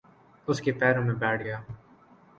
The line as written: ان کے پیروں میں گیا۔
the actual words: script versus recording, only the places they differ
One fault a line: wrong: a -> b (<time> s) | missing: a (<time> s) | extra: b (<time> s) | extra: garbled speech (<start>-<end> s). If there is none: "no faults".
wrong: ان -> اس (0.5 s)
extra: بیٹھ (1.1 s)